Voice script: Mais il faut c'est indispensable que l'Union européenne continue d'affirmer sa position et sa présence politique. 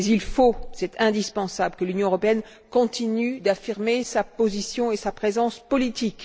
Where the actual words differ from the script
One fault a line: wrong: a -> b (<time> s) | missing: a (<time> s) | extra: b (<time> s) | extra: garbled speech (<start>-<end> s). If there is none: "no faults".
no faults